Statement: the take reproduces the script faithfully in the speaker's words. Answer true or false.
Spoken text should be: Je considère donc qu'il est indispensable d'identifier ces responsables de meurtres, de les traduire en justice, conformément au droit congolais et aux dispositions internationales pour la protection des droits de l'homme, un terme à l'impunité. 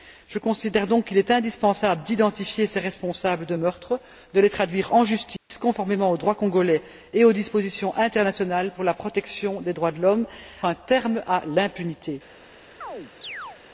true